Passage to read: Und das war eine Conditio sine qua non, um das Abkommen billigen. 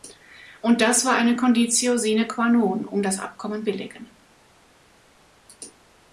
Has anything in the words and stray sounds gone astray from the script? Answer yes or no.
no